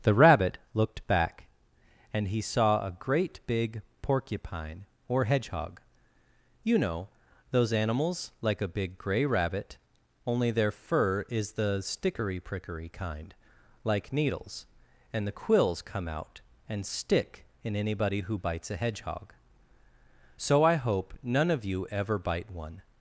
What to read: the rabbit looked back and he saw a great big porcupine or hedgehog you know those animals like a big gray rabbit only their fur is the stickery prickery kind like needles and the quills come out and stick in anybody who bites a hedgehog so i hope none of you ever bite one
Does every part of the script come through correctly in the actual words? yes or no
yes